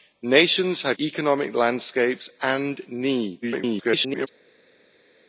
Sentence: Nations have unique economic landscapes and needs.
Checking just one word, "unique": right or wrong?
wrong